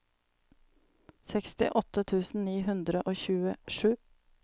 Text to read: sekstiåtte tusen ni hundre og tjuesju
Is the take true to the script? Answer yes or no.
yes